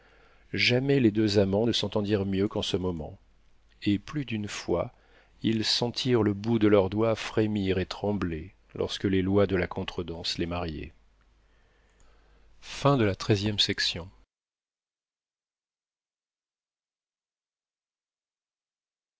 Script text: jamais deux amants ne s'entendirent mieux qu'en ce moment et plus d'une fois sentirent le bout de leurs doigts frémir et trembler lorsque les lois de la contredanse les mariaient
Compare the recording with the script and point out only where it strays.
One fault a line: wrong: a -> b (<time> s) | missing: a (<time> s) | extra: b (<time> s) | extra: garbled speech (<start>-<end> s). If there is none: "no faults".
extra: les (1.0 s)
extra: ils (5.4 s)